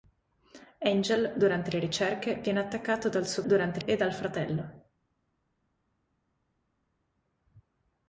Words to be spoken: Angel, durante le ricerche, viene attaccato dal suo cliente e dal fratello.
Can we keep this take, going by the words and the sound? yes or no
no